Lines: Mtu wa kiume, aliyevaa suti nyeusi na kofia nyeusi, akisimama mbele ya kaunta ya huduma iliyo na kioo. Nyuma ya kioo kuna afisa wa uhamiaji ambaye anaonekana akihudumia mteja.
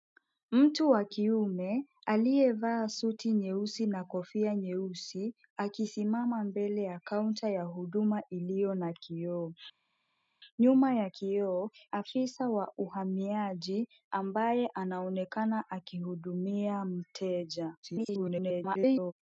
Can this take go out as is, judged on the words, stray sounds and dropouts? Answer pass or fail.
fail